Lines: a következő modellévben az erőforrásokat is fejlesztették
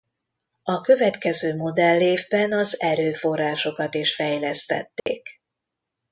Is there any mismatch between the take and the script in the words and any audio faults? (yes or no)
yes